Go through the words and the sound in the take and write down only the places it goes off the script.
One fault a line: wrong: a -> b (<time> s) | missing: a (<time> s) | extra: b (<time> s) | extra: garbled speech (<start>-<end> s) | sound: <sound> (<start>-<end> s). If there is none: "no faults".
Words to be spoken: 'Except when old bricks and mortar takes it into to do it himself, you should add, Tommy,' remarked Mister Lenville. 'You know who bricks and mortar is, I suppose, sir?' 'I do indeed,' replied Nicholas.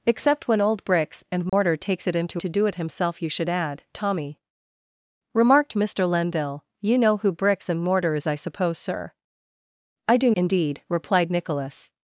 sound: dropout (1.5-1.5 s)